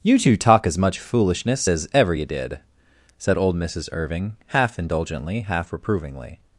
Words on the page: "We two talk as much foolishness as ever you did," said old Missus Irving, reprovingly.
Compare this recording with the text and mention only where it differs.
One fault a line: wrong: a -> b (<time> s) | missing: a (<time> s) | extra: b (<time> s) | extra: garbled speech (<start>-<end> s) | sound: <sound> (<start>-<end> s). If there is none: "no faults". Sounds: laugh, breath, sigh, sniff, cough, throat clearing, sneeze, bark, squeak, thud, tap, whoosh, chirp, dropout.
wrong: We -> You (0.0 s)
extra: half indulgently half (4.5 s)